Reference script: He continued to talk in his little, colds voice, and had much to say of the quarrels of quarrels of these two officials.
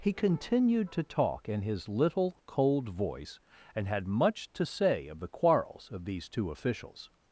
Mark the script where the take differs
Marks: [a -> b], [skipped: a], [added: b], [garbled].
He continued to talk in his little, [colds -> cold] voice, and had much to say of the quarrels of [skipped: quarrels of] these two officials.